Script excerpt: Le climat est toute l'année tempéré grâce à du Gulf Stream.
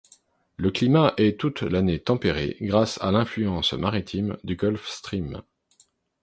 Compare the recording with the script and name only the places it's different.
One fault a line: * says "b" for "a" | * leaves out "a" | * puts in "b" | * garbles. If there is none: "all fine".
* puts in "l'influence maritime"